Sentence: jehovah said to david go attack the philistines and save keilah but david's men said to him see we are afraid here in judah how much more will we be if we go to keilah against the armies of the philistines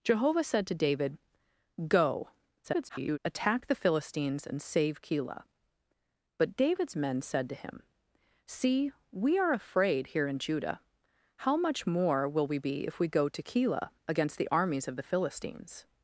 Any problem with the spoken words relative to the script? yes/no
yes